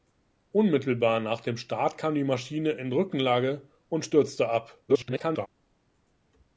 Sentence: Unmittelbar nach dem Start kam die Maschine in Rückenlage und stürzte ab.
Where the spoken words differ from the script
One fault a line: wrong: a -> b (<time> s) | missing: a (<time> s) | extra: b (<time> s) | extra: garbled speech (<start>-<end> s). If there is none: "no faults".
extra: garbled speech (4.9-5.5 s)